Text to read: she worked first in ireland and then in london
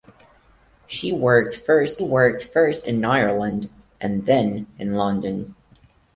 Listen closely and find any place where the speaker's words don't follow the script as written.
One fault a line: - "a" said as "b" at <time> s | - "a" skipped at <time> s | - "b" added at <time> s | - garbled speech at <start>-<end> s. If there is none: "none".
- "worked first" added at 2.0 s